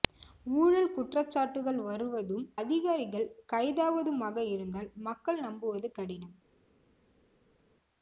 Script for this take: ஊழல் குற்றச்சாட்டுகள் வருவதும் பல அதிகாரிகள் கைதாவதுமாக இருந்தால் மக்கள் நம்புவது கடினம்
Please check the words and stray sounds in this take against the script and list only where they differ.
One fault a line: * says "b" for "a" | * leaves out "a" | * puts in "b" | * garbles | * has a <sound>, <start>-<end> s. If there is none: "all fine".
* leaves out "பல"